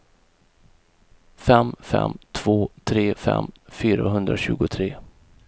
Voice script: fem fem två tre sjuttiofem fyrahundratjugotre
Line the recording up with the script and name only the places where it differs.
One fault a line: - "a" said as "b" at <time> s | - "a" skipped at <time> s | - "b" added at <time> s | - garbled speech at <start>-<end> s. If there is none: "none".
- "sjuttiofem" said as "fem" at 3.1 s